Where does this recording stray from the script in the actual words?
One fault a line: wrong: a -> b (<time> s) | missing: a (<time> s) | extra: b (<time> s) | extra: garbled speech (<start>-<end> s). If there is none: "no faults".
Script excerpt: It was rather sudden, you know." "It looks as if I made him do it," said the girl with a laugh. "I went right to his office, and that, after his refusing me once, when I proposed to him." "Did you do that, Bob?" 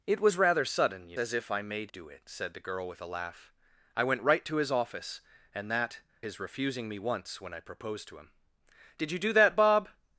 missing: know It looks (1.2 s)
missing: him (1.9 s)
missing: after (6.0 s)